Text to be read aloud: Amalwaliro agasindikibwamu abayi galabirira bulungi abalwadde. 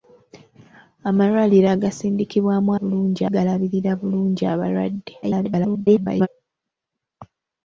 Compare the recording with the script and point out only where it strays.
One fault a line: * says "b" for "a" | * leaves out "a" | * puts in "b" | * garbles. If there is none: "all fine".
* says "bulungi" for "abayi"
* garbles